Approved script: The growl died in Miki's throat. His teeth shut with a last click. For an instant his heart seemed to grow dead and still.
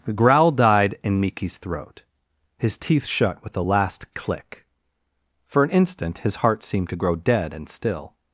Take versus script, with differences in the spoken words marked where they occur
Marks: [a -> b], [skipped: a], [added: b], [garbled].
The growl died in Miki's throat. His teeth shut with a last click. For an instant his heart seemed to grow dead and still.